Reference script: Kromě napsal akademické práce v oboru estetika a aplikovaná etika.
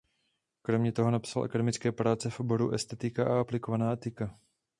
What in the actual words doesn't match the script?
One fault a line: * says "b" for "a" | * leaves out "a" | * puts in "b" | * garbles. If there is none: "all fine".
* puts in "toho"